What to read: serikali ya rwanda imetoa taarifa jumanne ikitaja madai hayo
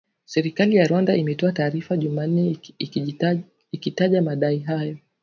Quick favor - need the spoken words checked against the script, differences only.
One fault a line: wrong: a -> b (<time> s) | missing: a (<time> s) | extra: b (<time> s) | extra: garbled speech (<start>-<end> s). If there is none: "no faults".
no faults